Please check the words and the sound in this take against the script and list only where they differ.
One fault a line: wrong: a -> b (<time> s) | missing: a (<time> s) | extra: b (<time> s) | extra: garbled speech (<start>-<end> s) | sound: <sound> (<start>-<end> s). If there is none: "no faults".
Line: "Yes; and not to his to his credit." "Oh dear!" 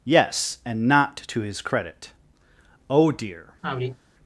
missing: to his (1.6 s)
sound: sigh (3.6-4.0 s)